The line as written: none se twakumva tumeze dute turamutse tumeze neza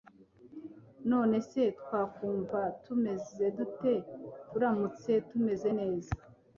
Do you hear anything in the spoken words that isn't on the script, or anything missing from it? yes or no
no